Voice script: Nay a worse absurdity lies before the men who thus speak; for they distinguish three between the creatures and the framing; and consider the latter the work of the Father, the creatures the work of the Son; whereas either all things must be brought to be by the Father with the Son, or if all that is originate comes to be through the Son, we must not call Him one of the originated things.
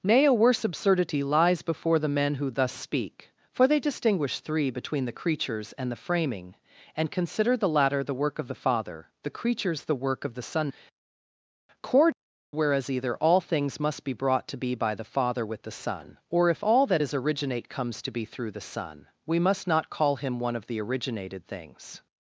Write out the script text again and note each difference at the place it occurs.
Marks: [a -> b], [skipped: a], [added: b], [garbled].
Nay a worse absurdity lies before the men who thus speak; for they distinguish three between the creatures and the framing; and consider the latter the work of the Father, the creatures the work of the Son; [added: cord] whereas either all things must be brought to be by the Father with the Son, or if all that is originate comes to be through the Son, we must not call Him one of the originated things.